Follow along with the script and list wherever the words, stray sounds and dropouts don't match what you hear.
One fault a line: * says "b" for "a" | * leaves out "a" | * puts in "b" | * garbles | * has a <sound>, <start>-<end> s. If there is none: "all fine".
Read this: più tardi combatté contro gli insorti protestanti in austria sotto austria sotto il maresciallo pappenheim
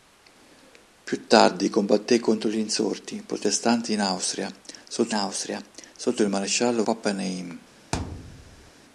* has a thud, 7.9-8.7 s